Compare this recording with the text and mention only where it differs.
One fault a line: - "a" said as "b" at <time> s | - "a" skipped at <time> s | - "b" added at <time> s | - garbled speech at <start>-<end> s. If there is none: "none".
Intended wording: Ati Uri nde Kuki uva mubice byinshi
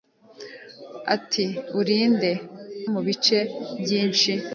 - "Kuki uva" skipped at 2.3 s